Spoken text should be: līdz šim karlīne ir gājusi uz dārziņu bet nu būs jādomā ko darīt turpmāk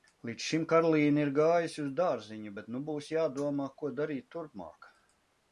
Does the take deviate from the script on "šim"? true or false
false